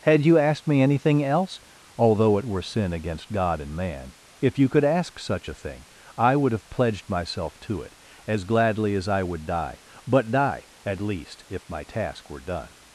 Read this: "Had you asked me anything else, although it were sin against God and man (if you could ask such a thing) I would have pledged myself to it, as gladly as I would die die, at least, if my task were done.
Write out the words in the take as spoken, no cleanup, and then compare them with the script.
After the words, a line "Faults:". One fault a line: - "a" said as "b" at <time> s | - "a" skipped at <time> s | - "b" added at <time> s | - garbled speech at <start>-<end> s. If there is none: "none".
"Had you asked me anything else, although it were sin against God and man (if you could ask such a thing) I would have pledged myself to it, as gladly as I would die but die, at least, if my task were done.
Faults:
- "but" added at 10.1 s